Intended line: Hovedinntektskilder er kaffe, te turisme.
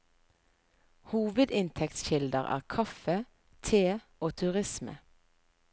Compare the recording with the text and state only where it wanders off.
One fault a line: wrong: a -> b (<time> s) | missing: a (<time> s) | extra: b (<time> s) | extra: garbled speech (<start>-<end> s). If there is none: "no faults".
extra: og (4.2 s)